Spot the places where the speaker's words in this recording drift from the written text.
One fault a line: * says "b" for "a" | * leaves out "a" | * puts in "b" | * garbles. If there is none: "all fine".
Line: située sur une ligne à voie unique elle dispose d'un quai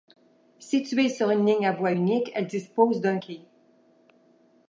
all fine